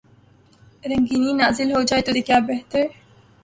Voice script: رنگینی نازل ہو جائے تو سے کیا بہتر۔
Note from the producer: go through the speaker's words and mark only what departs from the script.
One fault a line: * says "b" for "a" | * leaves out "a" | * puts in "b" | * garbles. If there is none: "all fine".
all fine